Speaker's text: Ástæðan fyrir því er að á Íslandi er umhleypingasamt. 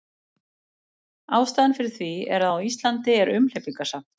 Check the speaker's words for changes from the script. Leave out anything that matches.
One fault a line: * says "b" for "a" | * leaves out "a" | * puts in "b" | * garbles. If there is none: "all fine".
all fine